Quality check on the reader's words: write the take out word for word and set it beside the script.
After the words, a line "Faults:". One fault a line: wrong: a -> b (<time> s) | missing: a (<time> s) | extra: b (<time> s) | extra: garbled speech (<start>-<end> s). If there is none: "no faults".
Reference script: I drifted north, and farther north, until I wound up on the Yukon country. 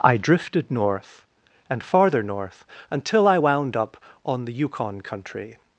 I drifted north, and farther north, until I wound up on the Yukon country.
Faults:
no faults